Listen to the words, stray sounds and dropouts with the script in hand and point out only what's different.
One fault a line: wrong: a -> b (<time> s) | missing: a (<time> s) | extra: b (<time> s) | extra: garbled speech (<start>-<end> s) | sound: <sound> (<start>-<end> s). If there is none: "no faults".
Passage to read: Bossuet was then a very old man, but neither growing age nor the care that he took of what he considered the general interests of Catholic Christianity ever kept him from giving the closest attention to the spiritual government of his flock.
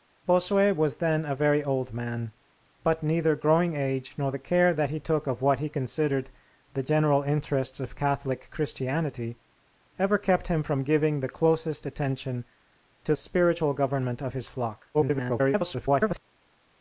missing: the (13.1 s)
extra: garbled speech (14.9-16.2 s)